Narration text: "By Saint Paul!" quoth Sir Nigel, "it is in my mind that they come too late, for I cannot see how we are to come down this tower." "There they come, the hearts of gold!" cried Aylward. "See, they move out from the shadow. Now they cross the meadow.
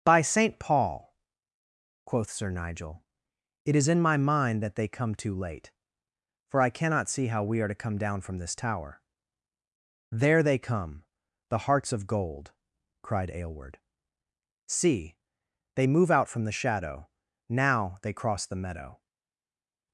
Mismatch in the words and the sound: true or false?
true